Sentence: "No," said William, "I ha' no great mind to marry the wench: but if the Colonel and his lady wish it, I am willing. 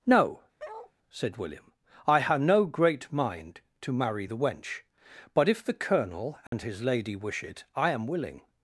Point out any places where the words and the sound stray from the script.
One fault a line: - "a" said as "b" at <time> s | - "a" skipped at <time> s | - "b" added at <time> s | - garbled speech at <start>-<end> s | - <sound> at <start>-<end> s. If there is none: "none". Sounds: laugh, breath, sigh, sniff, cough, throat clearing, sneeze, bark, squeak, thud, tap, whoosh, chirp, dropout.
- bark at 0.6-0.9 s
- dropout at 6.5-6.5 s